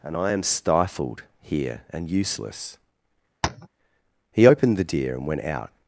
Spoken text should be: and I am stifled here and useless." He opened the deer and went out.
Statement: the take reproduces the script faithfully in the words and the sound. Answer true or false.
false